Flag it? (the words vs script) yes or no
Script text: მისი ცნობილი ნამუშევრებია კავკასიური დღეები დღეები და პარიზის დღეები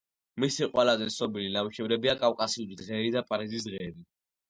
yes